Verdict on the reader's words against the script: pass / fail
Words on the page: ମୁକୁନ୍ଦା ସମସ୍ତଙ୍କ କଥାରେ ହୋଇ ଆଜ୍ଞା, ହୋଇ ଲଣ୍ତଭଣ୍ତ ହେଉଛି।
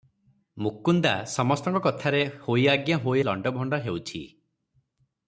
pass